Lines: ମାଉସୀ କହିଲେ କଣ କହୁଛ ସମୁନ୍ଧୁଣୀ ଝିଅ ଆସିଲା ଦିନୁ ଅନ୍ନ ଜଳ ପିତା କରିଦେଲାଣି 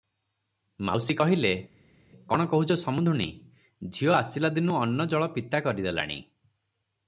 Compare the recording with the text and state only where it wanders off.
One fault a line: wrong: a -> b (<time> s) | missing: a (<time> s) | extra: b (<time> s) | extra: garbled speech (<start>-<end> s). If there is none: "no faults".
no faults